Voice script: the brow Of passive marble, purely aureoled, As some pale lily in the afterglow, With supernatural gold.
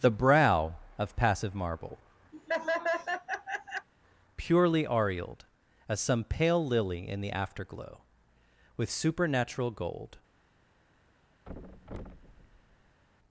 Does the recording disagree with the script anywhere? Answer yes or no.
no